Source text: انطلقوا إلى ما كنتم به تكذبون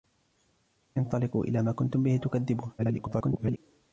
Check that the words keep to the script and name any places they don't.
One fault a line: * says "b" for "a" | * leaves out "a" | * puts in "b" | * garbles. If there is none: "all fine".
* garbles